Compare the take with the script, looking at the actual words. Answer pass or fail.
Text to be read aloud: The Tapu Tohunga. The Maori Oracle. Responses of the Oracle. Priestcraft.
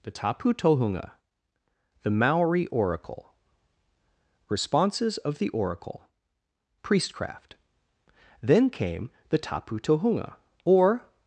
fail